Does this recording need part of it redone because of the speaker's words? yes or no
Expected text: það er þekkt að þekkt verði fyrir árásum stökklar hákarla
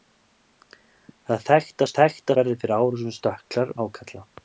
no